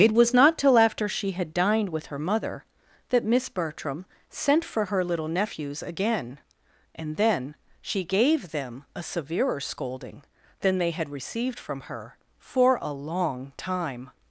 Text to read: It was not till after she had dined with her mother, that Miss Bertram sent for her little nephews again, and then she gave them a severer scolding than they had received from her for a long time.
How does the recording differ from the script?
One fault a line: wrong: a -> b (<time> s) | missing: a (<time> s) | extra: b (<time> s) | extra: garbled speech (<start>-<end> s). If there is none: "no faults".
no faults